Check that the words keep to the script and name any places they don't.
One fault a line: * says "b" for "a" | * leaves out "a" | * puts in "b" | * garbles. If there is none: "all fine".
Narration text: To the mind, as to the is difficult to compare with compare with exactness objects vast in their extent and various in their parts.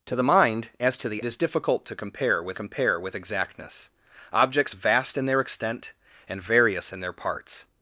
all fine